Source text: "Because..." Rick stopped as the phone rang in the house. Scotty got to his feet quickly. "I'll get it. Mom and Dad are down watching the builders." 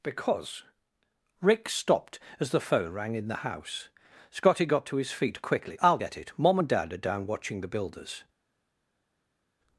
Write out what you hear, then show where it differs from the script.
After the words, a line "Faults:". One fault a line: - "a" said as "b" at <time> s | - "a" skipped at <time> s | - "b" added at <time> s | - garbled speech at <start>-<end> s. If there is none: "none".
"Because..." Rick stopped as the phone rang in the house. Scotty got to his feet quickly. "I'll get it. Mom and Dad are down watching the builders."
Faults:
none